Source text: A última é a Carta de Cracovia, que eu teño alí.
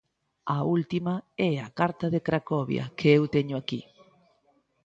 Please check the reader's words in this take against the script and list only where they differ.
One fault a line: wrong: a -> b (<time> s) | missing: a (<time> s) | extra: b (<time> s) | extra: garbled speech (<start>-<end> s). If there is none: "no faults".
wrong: alí -> aquí (3.6 s)